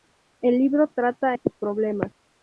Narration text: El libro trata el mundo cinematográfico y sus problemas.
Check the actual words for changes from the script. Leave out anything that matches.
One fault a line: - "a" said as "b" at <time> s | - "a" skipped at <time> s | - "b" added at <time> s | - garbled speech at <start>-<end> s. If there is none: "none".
- "el mundo cinematográfico" skipped at 1.4 s